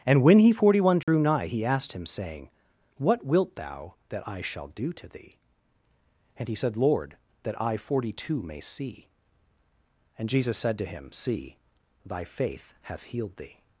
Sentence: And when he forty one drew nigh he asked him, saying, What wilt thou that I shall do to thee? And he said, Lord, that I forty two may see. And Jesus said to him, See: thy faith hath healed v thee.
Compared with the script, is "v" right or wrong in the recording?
wrong